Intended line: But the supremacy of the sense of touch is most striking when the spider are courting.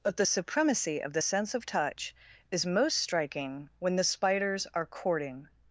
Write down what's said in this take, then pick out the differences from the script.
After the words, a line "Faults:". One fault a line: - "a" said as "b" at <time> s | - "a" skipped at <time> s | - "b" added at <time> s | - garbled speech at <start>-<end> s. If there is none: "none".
But the supremacy of the sense of touch is most striking when the spiders are courting.
Faults:
- "spider" said as "spiders" at 4.0 s